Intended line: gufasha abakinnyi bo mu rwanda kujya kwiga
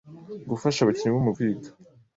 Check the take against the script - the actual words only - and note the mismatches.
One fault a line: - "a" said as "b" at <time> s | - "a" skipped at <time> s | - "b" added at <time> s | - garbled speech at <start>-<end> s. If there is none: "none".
- "rwanda kujya" skipped at 1.3 s